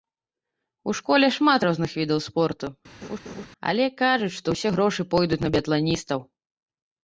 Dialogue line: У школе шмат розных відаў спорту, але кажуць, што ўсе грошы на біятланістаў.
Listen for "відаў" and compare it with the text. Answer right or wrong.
right